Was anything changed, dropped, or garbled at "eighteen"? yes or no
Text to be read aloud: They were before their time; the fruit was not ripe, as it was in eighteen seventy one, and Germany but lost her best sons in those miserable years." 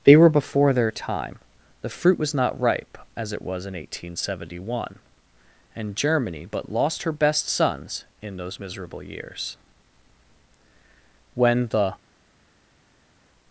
no